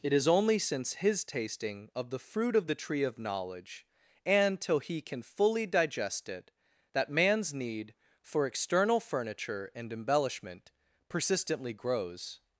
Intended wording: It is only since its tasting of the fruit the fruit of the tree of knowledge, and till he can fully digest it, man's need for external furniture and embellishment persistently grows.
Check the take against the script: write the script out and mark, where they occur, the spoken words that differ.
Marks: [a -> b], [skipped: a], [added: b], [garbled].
It is only since [its -> his] tasting of the fruit [skipped: the fruit] of the tree of knowledge, and till he can fully digest it, [added: that] man's need for external furniture and embellishment persistently grows.